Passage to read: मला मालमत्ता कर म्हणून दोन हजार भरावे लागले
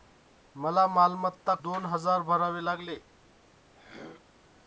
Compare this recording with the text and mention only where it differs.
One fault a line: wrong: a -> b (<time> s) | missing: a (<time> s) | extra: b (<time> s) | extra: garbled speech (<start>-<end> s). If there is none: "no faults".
missing: कर म्हणून (1.5 s)